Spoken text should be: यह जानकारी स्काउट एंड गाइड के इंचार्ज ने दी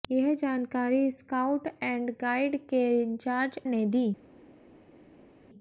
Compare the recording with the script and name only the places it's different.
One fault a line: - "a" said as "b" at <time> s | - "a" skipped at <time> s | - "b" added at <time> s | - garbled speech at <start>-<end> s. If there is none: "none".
none